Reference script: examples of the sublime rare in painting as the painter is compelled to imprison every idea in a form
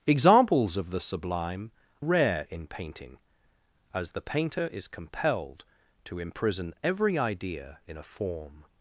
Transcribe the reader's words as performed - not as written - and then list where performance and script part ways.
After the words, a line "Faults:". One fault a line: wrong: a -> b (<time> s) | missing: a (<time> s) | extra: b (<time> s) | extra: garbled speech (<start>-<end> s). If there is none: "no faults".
examples of the sublime rare in painting as the painter is compelled to imprison every idea in a form
Faults:
no faults